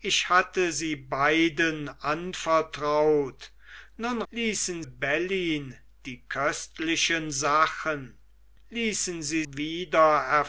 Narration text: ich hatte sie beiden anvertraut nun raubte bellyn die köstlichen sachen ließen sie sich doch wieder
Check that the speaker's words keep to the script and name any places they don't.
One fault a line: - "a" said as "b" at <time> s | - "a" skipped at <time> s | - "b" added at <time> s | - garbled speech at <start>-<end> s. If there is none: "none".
- "raubte" said as "ließen" at 4.3 s
- "sich doch" skipped at 9.4 s